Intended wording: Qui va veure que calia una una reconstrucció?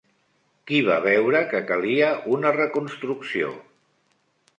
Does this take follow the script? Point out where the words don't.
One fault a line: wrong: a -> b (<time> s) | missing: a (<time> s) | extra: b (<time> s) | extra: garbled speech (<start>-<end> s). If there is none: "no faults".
missing: una (2.5 s)